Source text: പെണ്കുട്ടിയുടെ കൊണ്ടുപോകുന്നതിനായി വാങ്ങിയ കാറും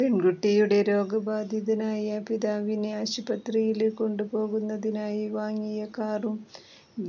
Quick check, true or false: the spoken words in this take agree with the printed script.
false